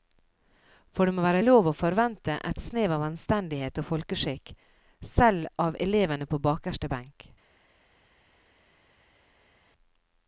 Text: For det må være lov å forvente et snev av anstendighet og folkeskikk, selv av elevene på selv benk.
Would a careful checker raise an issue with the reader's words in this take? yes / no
yes